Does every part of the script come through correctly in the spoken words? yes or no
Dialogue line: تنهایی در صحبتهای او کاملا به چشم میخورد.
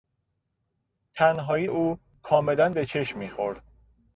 no